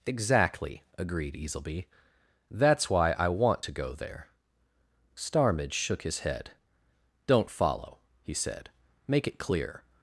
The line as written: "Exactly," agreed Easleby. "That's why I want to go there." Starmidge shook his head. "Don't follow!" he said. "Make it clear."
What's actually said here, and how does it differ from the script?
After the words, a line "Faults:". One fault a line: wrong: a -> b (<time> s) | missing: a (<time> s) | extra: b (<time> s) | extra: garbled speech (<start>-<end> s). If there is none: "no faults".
"Exactly," agreed Easleby. "That's why I want to go there." Starmidge shook his head. "Don't follow!" he said. "Make it clear."
Faults:
no faults